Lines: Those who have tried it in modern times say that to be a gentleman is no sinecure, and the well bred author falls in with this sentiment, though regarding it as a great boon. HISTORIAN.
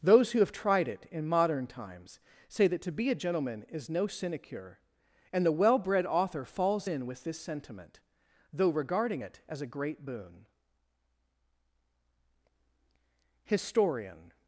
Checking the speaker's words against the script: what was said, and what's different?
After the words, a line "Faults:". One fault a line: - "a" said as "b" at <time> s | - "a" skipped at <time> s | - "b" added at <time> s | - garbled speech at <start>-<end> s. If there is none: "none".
Those who have tried it in modern times say that to be a gentleman is no sinecure, and the well bred author falls in with this sentiment, though regarding it as a great boon. HISTORIAN.
Faults:
none